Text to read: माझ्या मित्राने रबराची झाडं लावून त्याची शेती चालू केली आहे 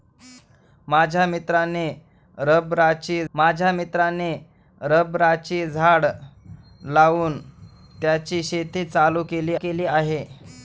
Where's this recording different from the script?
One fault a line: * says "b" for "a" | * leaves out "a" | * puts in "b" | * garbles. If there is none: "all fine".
* puts in "माझ्या मित्राने रबराची"
* puts in "केली"